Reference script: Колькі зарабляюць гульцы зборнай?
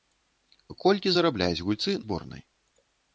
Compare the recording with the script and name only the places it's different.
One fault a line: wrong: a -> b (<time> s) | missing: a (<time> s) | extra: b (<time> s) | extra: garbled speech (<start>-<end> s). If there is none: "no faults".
no faults